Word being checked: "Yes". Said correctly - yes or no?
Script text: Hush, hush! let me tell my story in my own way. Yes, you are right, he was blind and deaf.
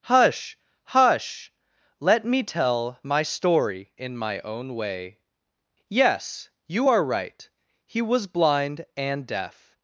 yes